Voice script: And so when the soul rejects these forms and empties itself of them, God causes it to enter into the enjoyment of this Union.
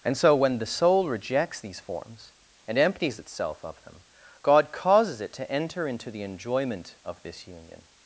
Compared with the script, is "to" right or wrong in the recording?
right